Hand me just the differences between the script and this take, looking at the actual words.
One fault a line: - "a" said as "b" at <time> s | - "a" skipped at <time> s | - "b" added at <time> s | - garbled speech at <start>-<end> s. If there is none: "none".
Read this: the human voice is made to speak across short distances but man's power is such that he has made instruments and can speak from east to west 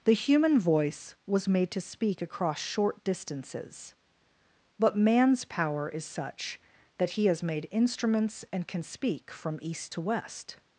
- "is" said as "was" at 1.3 s